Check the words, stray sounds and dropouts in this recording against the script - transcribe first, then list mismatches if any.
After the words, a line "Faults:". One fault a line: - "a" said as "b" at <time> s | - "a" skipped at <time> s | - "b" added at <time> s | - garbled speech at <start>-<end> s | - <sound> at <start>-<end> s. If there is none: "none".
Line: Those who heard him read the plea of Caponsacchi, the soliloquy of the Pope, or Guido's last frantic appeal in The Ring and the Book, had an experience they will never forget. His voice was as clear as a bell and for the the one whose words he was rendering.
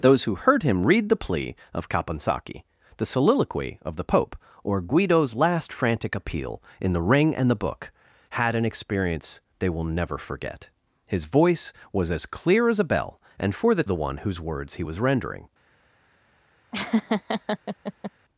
Those who heard him read the plea of Caponsacchi, the soliloquy of the Pope, or Guido's last frantic appeal in The Ring and the Book, had an experience they will never forget. His voice was as clear as a bell and for the the one whose words he was rendering.
Faults:
- laugh at 16.7-18.1 s